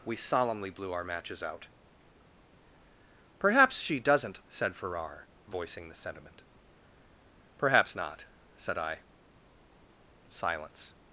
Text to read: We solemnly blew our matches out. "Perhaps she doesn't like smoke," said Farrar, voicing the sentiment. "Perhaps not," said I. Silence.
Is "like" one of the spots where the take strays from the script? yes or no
yes